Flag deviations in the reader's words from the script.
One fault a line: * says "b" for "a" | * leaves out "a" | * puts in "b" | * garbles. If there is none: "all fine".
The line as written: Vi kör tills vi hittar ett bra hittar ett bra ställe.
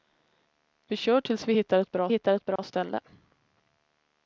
all fine